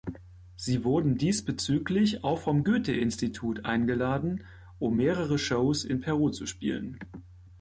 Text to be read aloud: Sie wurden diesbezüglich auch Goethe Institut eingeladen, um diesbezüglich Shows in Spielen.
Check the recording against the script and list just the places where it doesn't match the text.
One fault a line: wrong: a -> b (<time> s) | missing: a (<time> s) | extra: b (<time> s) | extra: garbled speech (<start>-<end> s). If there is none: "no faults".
extra: vom (2.4 s)
wrong: diesbezüglich -> mehrere (4.9 s)
extra: Peru zu (6.0 s)